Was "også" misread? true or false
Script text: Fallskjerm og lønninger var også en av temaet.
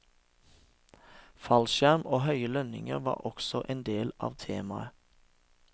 false